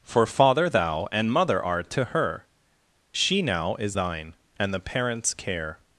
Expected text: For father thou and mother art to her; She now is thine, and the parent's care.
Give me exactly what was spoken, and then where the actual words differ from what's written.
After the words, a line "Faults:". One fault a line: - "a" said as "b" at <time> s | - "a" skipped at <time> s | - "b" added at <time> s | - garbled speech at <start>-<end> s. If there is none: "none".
For father thou and mother art to her; She now is thine, and the parent's care.
Faults:
none